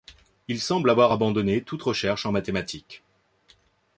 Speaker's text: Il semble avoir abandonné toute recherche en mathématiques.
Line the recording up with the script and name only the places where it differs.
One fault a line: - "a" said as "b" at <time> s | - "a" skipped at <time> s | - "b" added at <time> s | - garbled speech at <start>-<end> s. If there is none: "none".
none